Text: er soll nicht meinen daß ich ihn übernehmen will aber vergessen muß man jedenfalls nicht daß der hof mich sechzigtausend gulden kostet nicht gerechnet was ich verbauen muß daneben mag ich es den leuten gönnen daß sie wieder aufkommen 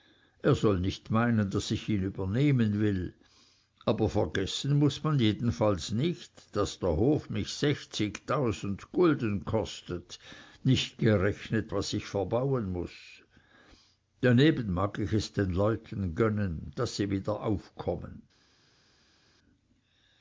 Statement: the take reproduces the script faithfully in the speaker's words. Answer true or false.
true